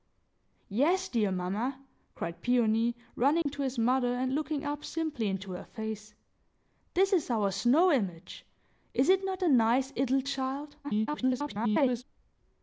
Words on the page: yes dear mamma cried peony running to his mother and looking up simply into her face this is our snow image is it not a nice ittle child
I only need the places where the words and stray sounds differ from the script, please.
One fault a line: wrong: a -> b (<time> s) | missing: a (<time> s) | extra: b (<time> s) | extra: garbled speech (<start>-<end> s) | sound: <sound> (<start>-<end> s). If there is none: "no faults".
sound: dropout (3.4-3.5 s)
extra: garbled speech (10.8-12.0 s)